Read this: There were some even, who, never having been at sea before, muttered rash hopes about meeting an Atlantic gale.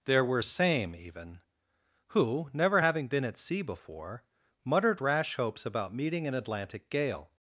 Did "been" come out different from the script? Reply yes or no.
no